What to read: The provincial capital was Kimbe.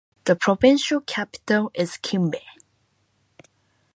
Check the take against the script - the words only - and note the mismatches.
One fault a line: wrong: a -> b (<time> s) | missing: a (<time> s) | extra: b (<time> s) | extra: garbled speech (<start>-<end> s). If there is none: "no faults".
wrong: was -> is (1.7 s)